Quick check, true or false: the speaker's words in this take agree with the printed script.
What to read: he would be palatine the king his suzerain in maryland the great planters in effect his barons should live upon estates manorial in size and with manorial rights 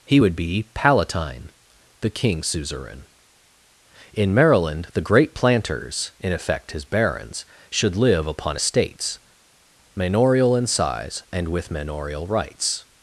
false